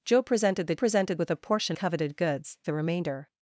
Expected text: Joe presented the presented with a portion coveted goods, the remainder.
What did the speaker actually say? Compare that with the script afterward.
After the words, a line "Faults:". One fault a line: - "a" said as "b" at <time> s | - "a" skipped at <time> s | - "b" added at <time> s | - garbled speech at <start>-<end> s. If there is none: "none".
Joe presented the presented with a portion coveted goods, the remainder.
Faults:
none